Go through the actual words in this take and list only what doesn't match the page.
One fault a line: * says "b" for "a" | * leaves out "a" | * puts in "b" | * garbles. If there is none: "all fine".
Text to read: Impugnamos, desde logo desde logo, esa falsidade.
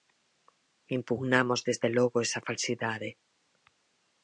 * leaves out "desde logo"